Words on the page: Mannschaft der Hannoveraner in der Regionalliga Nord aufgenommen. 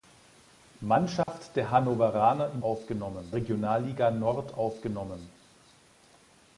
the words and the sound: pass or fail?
fail